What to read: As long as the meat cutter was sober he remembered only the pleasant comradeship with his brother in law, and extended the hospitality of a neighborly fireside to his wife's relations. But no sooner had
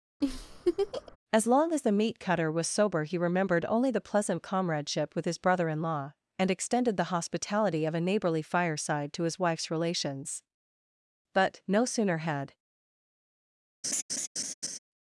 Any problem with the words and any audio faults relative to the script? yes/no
yes